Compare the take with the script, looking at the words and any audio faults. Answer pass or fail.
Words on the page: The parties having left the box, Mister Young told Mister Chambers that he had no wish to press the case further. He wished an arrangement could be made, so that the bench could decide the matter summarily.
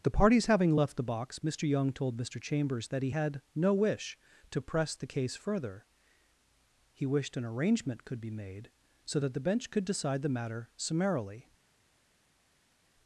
pass